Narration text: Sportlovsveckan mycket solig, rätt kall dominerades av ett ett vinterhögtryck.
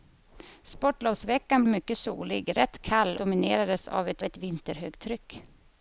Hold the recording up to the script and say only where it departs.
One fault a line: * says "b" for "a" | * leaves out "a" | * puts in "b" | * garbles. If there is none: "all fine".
all fine